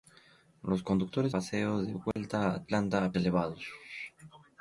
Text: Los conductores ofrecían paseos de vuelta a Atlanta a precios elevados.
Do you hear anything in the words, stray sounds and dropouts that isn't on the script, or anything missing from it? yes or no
yes